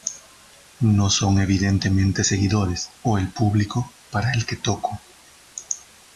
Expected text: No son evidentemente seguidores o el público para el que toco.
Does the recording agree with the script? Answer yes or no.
yes